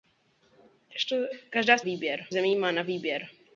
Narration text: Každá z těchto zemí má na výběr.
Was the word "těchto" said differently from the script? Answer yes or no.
yes